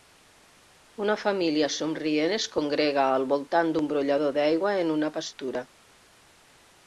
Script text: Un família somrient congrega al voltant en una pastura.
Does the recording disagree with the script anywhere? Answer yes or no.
yes